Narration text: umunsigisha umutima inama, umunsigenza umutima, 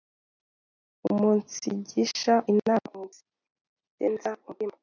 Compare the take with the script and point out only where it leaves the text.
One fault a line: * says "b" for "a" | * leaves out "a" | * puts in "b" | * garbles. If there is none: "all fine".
* leaves out "umutima"